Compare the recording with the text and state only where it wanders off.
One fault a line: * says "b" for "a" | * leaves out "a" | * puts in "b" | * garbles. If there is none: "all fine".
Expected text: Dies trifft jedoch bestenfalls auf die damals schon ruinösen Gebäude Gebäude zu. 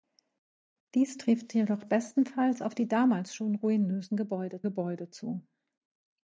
all fine